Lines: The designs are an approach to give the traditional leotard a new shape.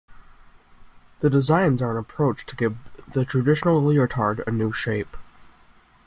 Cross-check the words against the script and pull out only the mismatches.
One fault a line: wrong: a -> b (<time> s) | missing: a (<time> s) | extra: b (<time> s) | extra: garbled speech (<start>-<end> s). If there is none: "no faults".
no faults